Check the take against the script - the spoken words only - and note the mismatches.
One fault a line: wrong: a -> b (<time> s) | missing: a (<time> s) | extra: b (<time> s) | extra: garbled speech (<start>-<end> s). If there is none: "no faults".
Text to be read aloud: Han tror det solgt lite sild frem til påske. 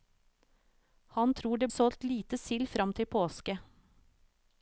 no faults